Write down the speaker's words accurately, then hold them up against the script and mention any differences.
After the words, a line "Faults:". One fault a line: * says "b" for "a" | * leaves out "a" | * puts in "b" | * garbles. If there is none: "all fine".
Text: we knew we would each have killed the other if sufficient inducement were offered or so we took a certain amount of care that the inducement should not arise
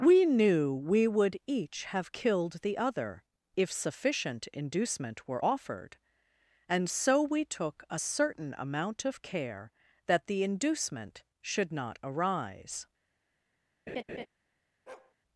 we knew we would each have killed the other if sufficient inducement were offered and so we took a certain amount of care that the inducement should not arise
Faults:
* says "and" for "or"